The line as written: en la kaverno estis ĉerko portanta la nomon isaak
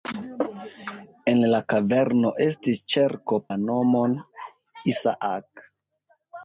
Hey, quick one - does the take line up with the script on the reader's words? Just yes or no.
no